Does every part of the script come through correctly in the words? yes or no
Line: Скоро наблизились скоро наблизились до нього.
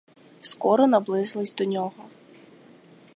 no